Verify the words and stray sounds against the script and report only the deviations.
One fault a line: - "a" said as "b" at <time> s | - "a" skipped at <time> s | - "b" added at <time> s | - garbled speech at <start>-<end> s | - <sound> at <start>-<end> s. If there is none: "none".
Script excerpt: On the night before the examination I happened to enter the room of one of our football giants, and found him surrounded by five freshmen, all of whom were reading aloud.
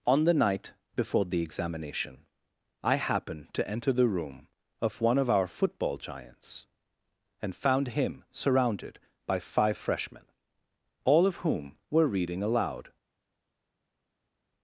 none